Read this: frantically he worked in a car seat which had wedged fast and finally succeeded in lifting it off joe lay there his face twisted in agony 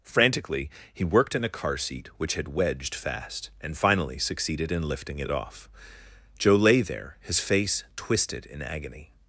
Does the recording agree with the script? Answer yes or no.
yes